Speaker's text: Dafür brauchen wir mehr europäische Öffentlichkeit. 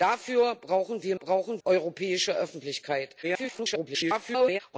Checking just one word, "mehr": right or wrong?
wrong